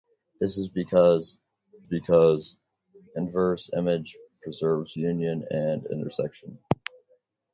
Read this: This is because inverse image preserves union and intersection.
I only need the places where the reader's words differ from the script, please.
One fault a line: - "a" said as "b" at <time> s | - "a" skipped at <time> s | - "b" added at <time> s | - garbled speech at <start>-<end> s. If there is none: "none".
- "because" added at 1.8 s